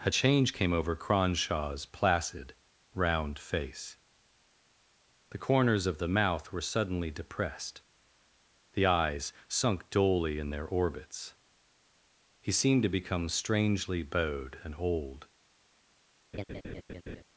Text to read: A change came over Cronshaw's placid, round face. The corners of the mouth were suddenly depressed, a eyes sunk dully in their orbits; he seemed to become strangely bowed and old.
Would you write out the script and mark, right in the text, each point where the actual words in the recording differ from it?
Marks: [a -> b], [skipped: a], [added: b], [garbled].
A change came over Cronshaw's placid, round face. The corners of the mouth were suddenly depressed, [a -> the] eyes sunk dully in their orbits; he seemed to become strangely bowed and old.